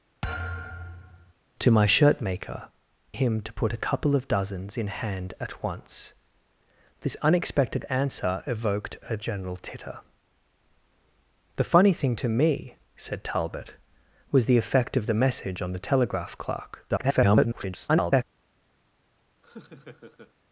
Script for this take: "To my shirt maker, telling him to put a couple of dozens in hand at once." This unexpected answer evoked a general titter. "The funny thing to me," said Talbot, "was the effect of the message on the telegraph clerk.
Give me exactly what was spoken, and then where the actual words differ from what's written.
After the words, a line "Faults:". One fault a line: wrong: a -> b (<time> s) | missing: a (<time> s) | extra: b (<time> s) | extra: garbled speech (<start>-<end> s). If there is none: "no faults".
"To my shirt maker, him to put a couple of dozens in hand at once." This unexpected answer evoked a general titter. "The funny thing to me," said Talbot, "was the effect of the message on the telegraph clerk. [garbled]
Faults:
missing: telling (2.7 s)
extra: garbled speech (16.9-18.2 s)